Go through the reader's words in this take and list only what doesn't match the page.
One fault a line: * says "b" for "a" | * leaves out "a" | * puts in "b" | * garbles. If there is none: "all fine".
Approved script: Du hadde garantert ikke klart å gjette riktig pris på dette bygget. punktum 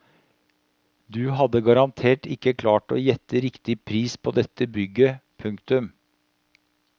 all fine